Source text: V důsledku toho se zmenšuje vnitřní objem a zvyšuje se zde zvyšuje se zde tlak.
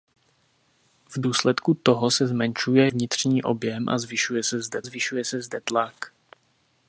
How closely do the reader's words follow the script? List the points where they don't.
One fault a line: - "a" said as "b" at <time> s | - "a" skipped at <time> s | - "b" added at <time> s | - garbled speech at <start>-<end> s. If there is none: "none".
none